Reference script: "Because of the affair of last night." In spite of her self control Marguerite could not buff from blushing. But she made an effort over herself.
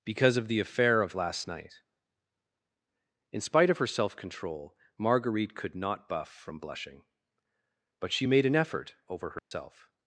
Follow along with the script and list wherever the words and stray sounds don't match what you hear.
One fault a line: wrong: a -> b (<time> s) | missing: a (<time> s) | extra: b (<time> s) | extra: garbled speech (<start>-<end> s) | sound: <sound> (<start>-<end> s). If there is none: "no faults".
sound: dropout (9.4-9.5 s)